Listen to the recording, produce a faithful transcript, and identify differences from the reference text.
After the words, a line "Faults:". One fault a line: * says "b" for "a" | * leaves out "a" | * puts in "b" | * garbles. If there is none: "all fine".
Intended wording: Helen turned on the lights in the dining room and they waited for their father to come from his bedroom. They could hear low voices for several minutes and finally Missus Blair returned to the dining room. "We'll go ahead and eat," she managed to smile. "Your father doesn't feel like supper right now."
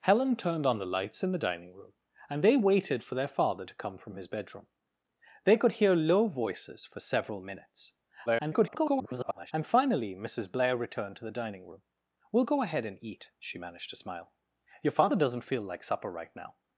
Helen turned on the lights in the dining room and they waited for their father to come from his bedroom. They could hear low voices for several minutes [garbled] and finally Missus Blair returned to the dining room. "We'll go ahead and eat," she managed to smile. "Your father doesn't feel like supper right now."
Faults:
* garbles